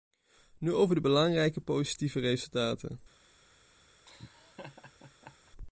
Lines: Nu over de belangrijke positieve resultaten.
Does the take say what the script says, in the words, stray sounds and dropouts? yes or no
no